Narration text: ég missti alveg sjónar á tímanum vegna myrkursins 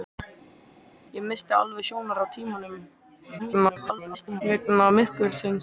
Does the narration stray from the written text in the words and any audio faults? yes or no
yes